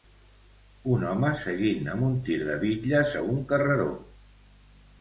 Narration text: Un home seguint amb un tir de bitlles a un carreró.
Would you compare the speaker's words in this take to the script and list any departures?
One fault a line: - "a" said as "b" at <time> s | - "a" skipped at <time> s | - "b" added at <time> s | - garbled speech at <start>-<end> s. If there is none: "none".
none